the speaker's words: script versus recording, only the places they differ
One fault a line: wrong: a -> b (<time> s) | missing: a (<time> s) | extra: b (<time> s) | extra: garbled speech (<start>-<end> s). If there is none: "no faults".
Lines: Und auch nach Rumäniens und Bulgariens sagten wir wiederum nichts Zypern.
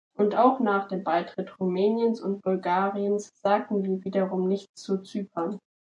extra: dem Beitritt (0.9 s)
extra: zu (4.8 s)